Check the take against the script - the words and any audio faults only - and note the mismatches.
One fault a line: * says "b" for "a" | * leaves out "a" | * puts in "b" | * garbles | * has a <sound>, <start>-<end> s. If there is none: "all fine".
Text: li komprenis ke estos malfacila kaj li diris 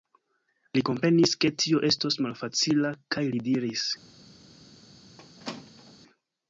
* puts in "tio"
* has a squeak, 5.2-6.0 s